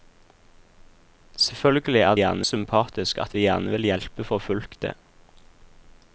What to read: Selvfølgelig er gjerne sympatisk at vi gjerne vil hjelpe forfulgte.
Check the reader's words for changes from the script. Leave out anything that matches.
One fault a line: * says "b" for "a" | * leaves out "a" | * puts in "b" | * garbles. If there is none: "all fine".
all fine